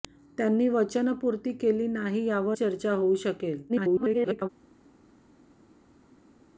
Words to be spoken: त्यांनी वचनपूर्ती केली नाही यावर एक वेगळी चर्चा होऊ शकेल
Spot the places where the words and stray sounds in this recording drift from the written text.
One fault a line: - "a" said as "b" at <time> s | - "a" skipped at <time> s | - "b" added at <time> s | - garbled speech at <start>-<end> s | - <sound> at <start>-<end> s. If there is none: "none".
- "एक वेगळी" skipped at 2.6 s
- garbled speech at 3.7-4.5 s